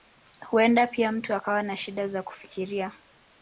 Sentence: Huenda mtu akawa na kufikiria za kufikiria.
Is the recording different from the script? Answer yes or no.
yes